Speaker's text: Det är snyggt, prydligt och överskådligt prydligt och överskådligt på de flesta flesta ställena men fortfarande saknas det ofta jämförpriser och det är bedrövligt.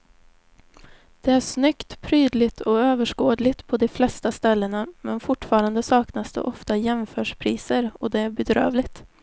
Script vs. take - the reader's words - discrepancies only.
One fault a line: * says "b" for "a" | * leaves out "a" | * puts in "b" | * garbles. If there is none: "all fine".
* leaves out "prydligt och överskådligt"
* leaves out "flesta"